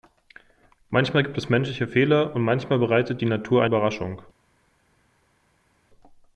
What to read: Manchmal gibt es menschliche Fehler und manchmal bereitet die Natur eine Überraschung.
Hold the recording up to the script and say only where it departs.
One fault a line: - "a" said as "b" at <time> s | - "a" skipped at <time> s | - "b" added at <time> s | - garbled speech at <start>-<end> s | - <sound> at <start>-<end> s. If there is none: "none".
- "eine" skipped at 3.6 s